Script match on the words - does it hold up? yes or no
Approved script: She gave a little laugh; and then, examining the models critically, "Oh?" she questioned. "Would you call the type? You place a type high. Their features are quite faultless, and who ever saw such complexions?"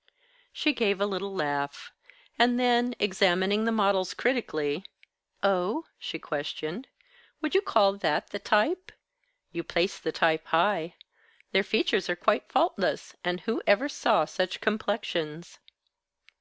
no